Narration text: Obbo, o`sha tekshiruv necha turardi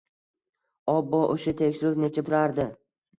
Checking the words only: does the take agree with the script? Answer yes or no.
yes